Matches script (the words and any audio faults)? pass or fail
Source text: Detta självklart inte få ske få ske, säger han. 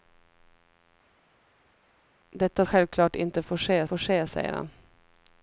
pass